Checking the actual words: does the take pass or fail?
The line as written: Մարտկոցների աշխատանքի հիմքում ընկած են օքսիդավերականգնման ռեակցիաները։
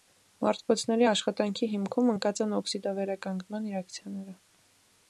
pass